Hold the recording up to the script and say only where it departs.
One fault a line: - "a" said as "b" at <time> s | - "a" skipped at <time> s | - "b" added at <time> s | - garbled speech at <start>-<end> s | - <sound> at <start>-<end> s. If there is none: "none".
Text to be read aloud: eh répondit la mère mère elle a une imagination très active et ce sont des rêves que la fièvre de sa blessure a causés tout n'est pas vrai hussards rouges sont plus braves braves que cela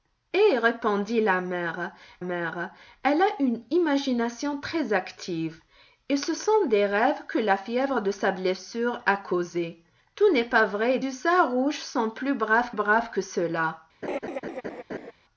- laugh at 14.0-15.1 s